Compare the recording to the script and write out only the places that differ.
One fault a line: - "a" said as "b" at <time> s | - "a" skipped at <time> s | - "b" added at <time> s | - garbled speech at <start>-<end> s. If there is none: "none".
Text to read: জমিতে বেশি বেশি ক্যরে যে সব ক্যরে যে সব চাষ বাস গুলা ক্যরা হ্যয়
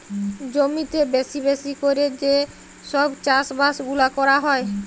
- "ক্যরে যে সব" skipped at 3.1 s